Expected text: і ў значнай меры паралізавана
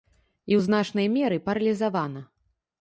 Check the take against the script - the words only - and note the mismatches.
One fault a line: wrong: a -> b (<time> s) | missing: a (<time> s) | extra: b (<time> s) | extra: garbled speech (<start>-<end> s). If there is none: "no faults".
no faults